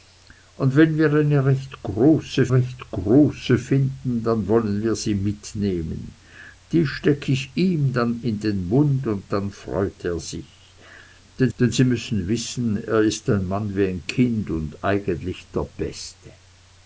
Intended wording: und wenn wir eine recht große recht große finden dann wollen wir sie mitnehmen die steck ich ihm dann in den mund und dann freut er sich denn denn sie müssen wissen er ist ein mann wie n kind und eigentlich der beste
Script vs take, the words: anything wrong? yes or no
no